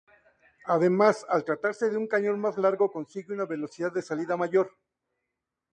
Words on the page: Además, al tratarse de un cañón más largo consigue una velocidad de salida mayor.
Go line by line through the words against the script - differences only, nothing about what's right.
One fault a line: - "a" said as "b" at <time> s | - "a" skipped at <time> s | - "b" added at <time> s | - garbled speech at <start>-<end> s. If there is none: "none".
none